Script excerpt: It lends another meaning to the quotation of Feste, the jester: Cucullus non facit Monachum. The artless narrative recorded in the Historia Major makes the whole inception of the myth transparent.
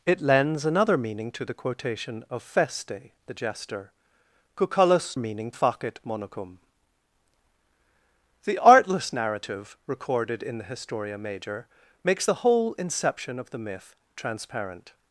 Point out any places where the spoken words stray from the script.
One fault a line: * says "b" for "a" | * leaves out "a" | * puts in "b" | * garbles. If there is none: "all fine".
* says "meaning" for "non"